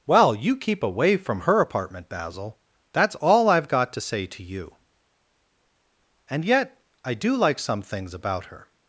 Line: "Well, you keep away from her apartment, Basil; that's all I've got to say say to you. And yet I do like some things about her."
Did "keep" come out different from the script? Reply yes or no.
no